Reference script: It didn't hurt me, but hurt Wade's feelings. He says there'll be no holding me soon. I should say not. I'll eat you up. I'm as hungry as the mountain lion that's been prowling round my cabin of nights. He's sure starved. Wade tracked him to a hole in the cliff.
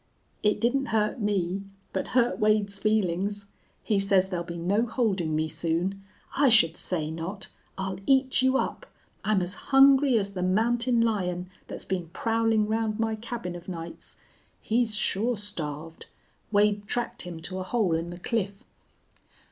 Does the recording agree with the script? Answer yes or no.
yes